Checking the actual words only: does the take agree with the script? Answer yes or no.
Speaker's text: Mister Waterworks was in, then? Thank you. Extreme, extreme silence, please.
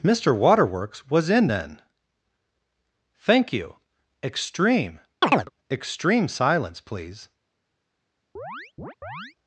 yes